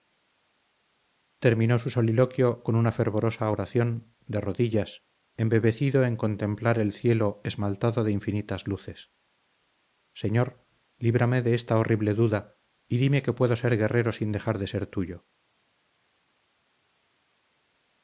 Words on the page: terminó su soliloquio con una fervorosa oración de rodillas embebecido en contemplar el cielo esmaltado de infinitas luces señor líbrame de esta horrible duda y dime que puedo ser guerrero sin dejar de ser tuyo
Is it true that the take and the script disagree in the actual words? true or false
false